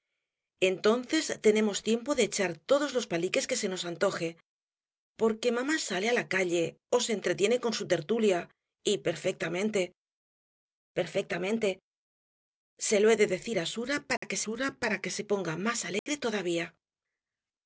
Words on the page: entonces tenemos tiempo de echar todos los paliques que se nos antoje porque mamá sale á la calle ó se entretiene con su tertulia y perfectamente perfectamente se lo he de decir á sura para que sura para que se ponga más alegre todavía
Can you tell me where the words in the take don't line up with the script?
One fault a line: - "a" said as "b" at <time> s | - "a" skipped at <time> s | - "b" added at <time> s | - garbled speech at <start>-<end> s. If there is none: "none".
none